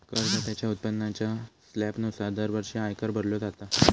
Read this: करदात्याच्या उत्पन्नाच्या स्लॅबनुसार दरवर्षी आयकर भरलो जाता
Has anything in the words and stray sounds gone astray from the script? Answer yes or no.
no